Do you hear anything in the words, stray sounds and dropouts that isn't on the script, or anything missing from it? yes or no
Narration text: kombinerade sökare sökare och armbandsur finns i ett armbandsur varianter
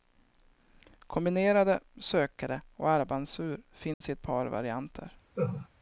yes